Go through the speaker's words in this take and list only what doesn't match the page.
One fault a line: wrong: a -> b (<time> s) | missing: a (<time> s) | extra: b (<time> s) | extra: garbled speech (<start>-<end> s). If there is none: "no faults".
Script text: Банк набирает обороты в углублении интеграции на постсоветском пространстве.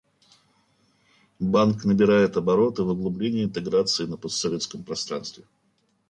no faults